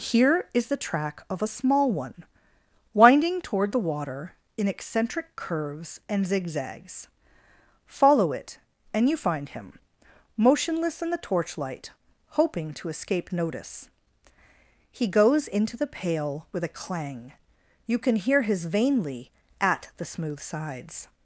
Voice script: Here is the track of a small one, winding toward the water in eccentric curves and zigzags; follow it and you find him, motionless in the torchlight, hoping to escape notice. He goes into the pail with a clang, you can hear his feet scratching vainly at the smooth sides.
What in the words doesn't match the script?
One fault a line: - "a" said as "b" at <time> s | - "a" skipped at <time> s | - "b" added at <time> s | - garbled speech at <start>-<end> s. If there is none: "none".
- "feet scratching" skipped at 18.6 s